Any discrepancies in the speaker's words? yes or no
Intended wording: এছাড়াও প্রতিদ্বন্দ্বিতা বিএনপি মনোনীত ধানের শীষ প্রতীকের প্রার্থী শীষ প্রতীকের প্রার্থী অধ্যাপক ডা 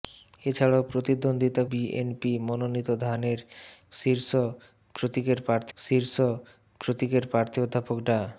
no